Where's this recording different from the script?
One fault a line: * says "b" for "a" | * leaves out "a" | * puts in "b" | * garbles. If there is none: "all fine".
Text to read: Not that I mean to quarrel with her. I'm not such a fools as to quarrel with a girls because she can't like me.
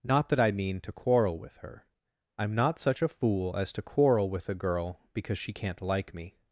* says "fool" for "fools"
* says "girl" for "girls"